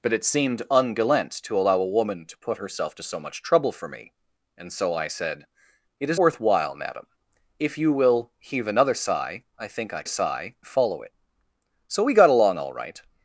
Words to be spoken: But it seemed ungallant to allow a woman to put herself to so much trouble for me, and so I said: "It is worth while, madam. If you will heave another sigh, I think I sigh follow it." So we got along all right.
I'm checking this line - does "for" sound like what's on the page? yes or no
yes